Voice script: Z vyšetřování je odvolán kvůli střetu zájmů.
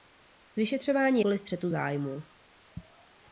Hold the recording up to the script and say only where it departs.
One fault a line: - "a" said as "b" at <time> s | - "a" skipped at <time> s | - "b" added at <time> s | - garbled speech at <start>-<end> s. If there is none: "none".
- "je odvolán" skipped at 1.2 s